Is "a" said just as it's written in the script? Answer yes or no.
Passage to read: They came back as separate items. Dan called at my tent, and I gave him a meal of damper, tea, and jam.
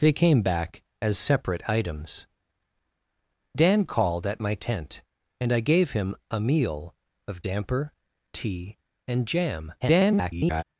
yes